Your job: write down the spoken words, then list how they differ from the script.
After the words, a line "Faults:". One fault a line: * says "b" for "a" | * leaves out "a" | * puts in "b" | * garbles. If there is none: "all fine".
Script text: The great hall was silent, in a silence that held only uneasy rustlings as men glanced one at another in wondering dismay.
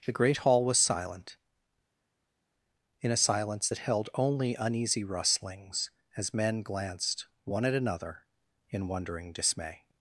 The great hall was silent, in a silence that held only uneasy rustlings as men glanced one at another in wondering dismay.
Faults:
all fine